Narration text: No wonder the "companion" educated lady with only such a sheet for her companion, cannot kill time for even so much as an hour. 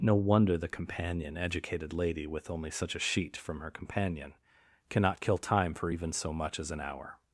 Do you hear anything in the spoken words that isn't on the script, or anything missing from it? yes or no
yes